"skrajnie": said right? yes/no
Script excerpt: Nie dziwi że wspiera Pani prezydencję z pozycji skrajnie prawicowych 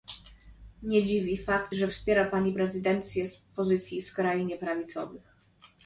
yes